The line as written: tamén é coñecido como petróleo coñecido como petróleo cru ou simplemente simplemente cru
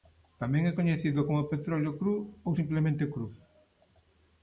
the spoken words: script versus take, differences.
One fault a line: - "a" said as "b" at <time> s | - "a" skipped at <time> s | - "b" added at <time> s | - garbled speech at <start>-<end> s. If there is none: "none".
- "coñecido como petróleo" skipped at 1.9 s
- "simplemente" skipped at 3.0 s